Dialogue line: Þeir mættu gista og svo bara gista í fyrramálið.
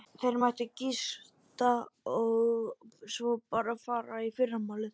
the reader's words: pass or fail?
fail